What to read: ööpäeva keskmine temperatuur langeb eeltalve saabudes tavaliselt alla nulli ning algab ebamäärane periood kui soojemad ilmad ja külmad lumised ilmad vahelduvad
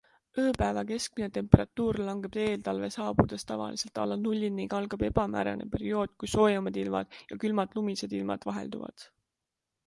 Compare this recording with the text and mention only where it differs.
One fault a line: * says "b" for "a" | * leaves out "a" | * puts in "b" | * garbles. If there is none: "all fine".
all fine